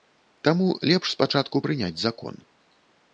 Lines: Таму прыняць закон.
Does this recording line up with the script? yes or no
no